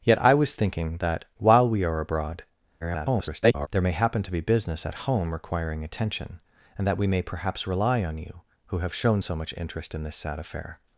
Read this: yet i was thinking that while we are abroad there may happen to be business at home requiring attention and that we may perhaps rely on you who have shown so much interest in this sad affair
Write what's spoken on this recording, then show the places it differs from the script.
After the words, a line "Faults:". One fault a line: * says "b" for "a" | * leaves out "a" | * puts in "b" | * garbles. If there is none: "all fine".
yet i was thinking that while we are abroad [garbled] there may happen to be business at home requiring attention and that we may perhaps rely on you who have shown so much interest in this sad affair
Faults:
* garbles